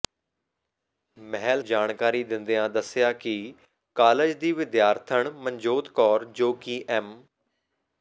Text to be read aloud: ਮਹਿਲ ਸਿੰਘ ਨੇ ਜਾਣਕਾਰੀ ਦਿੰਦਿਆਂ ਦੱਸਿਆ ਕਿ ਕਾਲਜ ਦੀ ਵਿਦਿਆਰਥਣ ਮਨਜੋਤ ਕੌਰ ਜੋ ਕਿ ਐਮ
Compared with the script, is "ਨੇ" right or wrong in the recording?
wrong